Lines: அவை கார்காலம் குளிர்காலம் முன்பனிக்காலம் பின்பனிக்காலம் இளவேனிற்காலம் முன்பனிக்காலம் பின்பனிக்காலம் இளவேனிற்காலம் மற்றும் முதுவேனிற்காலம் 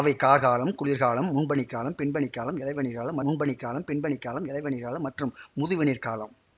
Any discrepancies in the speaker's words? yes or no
no